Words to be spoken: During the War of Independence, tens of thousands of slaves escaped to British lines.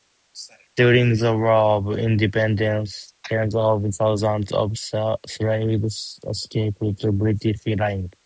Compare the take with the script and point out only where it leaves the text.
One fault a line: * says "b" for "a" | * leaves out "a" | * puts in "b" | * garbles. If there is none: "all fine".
all fine